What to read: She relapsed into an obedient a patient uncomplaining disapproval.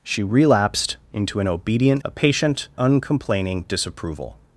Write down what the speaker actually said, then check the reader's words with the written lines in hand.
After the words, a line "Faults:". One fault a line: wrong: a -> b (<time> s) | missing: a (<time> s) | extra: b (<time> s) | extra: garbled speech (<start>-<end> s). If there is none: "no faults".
She relapsed into an obedient a patient uncomplaining disapproval.
Faults:
no faults